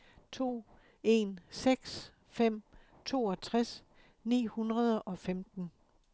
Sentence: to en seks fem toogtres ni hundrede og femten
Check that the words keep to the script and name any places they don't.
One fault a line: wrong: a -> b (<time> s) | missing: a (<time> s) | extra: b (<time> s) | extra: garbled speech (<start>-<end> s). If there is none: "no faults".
no faults